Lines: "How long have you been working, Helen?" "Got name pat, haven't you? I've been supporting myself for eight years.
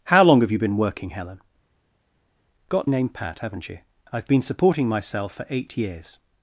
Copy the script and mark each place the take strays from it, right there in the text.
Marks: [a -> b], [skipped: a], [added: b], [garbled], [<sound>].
"How long have you been working, Helen?" "Got name pat, haven't you? I've been supporting myself for eight years.